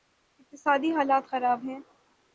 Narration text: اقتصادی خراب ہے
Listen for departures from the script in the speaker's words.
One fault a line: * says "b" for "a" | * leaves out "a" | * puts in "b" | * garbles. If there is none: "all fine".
* puts in "حالت"